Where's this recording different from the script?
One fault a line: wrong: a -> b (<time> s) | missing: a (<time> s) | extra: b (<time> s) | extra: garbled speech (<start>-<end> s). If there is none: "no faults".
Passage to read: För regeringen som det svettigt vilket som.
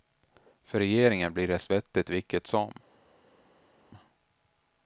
wrong: som -> blir (1.3 s)